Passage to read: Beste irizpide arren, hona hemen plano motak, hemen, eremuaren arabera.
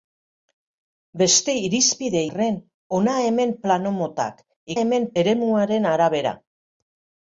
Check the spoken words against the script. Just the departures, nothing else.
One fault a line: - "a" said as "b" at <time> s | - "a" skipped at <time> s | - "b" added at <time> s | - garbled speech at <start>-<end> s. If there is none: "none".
none